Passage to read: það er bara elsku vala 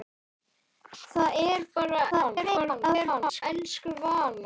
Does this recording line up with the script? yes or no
no